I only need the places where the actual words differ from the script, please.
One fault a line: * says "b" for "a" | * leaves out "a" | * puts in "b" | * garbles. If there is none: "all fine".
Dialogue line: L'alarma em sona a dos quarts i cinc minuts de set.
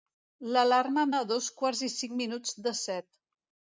* leaves out "sona"